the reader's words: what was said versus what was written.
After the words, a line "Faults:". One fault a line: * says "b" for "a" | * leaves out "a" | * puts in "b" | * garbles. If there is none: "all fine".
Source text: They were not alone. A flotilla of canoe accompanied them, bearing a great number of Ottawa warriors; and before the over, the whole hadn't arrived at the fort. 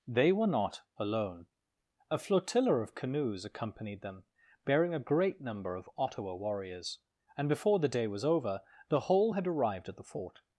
They were not alone. A flotilla of canoes accompanied them, bearing a great number of Ottawa warriors; and before the day was over, the whole had arrived at the fort.
Faults:
* says "canoes" for "canoe"
* puts in "day was"
* says "had" for "hadn't"